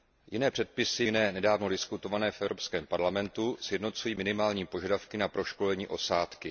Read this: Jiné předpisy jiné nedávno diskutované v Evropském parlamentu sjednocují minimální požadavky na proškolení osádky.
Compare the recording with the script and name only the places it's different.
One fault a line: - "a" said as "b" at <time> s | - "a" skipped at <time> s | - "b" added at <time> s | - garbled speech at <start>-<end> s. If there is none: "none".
none